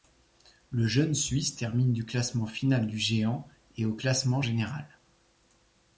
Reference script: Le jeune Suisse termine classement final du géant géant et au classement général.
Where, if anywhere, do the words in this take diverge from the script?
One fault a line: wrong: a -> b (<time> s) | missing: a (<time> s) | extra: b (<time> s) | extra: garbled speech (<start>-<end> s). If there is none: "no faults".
extra: du (1.9 s)
missing: géant (3.5 s)